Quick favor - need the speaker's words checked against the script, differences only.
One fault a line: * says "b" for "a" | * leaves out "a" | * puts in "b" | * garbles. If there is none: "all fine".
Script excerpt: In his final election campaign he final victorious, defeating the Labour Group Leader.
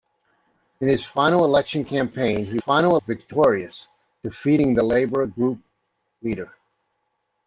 all fine